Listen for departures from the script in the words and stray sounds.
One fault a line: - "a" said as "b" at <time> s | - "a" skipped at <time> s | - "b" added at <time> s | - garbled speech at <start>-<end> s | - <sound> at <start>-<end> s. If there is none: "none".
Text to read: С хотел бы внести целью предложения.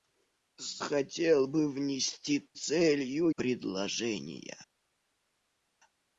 none